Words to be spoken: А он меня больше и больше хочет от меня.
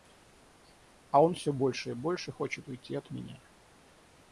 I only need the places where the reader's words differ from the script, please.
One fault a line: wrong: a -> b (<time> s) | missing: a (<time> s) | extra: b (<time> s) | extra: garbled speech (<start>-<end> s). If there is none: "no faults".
wrong: меня -> всё (1.4 s)
extra: уйти (2.7 s)